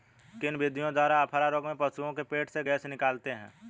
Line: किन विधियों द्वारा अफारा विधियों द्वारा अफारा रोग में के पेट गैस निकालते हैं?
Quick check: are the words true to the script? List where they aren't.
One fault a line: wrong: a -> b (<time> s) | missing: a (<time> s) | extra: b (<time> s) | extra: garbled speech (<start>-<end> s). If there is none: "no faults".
missing: विधियों द्वारा अफारा (1.5 s)
extra: पशुओं (1.8 s)
extra: से (2.5 s)